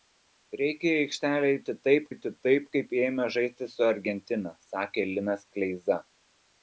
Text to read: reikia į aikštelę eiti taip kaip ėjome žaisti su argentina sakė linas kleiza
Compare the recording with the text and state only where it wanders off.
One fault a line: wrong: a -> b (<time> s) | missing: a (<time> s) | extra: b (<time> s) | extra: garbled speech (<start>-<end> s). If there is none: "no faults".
extra: eiti taip (2.1 s)